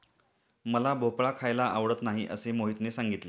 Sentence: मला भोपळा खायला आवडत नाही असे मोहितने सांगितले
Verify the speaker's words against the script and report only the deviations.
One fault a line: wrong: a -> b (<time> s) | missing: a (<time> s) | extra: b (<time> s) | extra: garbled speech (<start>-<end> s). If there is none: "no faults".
no faults